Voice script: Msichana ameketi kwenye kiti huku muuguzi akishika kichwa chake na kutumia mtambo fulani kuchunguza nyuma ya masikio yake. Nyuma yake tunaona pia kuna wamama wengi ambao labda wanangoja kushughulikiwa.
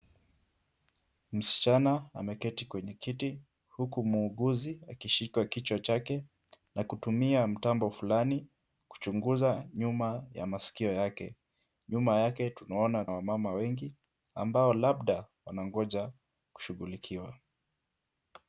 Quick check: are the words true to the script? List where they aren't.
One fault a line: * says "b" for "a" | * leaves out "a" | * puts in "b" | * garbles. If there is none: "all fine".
* leaves out "pia kuna"